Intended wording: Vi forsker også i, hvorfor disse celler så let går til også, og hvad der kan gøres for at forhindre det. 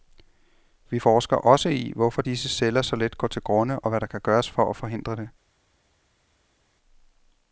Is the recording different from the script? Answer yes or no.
yes